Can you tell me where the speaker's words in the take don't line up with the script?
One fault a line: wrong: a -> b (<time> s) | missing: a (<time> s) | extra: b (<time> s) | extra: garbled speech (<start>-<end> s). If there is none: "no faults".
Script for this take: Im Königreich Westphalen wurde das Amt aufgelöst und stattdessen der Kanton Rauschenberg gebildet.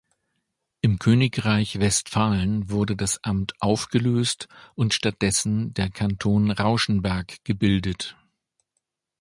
no faults